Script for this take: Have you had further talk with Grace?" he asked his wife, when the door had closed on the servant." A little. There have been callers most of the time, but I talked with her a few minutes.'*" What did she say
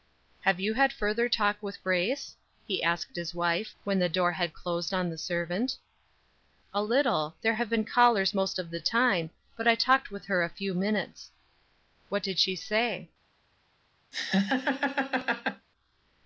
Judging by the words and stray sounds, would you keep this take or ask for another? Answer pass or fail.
fail